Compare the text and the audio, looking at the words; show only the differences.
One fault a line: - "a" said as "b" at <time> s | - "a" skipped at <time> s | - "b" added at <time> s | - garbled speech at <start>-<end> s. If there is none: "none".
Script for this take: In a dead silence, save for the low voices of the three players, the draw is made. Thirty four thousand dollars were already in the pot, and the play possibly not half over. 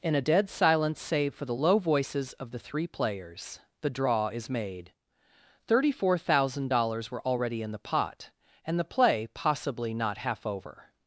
none